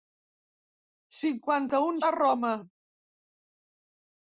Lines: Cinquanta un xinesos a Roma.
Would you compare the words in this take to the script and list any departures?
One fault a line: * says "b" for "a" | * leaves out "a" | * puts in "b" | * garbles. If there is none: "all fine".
* leaves out "xinesos"